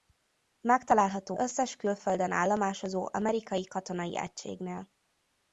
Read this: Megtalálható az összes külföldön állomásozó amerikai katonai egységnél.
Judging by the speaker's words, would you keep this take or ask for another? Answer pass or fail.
fail